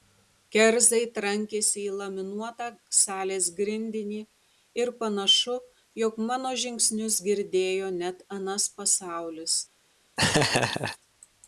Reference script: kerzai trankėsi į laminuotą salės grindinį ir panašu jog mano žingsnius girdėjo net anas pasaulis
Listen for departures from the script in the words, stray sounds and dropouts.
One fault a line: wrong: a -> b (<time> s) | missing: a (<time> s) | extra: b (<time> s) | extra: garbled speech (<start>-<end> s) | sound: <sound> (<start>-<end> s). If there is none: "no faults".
sound: laugh (10.2-11.0 s)